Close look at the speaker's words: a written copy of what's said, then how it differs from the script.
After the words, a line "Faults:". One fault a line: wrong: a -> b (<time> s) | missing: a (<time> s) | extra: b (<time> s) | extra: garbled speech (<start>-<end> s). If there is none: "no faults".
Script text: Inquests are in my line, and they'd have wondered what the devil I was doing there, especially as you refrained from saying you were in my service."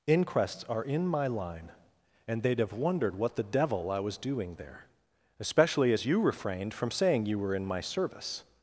Inquests are in my line, and they'd have wondered what the devil I was doing there, especially as you refrained from saying you were in my service."
Faults:
no faults